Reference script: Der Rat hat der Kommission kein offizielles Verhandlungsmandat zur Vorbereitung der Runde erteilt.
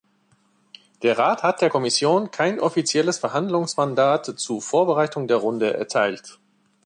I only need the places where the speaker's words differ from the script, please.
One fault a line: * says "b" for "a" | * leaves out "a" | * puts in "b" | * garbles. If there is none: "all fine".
all fine